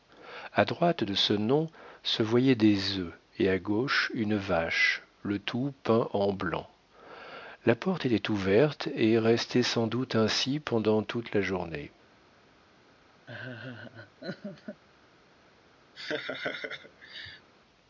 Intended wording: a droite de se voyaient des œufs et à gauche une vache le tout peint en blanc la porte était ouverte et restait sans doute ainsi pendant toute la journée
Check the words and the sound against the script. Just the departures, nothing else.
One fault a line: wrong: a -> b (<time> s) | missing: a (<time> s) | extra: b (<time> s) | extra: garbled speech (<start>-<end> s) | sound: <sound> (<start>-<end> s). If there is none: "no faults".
extra: ce nom (1.1 s)
sound: laugh (13.3-14.8 s)
sound: laugh (15.9-17.5 s)